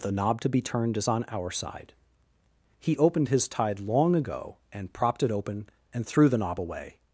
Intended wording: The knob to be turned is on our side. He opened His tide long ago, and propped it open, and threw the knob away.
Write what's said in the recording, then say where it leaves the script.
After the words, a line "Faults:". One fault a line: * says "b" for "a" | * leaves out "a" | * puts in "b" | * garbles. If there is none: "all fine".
The knob to be turned is on our side. He opened His tide long ago, and propped it open, and threw the knob away.
Faults:
all fine